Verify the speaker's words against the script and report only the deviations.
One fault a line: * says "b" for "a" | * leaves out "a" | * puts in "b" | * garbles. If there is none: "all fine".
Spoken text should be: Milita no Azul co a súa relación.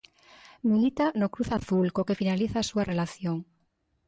* puts in "Cruz"
* puts in "que finaliza"